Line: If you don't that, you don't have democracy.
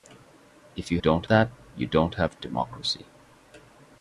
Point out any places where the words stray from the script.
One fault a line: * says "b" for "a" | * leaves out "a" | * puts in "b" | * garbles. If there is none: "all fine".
all fine